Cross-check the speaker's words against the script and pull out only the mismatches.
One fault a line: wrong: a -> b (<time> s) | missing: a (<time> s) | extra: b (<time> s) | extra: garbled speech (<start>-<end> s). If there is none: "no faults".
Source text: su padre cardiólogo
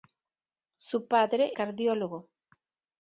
no faults